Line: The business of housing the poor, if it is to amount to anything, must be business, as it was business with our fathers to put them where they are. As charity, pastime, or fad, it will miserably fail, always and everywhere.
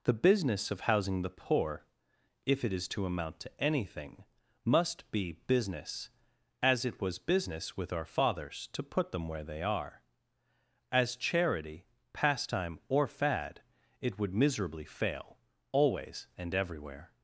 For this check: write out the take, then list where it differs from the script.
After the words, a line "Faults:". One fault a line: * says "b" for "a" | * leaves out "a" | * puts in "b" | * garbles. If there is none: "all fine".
The business of housing the poor, if it is to amount to anything, must be business, as it was business with our fathers to put them where they are. As charity, pastime, or fad, it would miserably fail, always and everywhere.
Faults:
* says "would" for "will"